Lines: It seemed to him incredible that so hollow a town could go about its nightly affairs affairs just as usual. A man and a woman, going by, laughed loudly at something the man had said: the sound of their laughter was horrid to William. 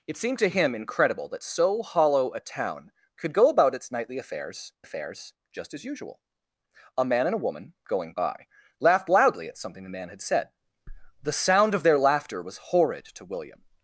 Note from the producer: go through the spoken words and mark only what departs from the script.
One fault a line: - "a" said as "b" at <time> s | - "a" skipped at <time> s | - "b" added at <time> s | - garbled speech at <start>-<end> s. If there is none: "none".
none